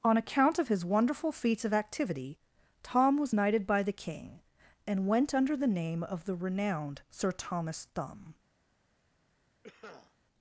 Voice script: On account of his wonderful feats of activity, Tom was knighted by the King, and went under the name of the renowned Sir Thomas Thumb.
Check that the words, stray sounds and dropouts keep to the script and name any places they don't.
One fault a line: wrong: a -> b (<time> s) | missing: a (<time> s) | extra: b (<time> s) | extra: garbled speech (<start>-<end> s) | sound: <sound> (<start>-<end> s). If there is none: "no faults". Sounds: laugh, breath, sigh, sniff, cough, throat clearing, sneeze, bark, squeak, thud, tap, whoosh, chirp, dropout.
sound: cough (9.6-10.2 s)